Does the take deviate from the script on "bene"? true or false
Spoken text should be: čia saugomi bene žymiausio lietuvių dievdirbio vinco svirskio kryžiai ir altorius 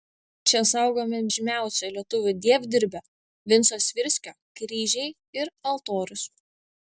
true